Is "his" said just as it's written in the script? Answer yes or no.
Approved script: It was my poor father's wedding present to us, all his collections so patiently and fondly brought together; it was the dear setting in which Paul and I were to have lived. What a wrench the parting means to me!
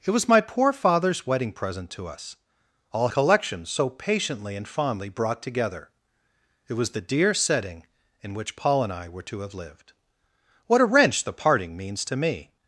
no